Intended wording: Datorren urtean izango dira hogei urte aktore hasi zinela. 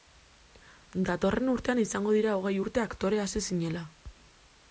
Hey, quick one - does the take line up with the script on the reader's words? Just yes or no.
yes